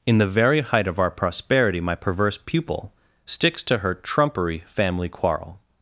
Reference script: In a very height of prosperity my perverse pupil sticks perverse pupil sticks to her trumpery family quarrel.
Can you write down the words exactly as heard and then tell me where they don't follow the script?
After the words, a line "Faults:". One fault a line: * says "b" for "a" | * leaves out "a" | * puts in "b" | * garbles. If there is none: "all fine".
In the very height of our prosperity my perverse pupil sticks to her trumpery family quarrel.
Faults:
* says "the" for "a"
* puts in "our"
* leaves out "perverse pupil sticks"